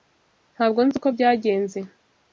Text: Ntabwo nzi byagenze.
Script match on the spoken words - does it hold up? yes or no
no